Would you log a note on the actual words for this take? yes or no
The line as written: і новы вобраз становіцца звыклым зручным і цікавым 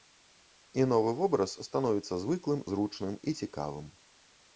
no